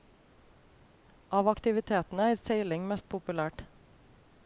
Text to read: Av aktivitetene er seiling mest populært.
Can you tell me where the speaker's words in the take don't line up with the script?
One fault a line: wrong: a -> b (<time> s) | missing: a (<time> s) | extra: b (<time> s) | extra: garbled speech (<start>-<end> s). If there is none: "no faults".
no faults